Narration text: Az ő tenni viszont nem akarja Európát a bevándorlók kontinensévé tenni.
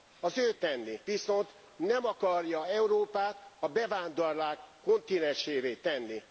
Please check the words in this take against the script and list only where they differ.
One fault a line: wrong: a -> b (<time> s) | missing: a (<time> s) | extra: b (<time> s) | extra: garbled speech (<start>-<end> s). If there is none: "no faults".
no faults